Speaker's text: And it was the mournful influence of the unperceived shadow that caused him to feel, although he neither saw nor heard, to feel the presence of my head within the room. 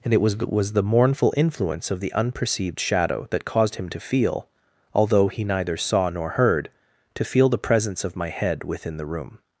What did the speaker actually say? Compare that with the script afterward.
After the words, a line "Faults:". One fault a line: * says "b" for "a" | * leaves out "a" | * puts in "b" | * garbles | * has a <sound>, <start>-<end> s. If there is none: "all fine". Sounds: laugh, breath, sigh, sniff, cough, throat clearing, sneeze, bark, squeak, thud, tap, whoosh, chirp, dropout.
And it was was the mournful influence of the unperceived shadow that caused him to feel, although he neither saw nor heard, to feel the presence of my head within the room.
Faults:
* puts in "was"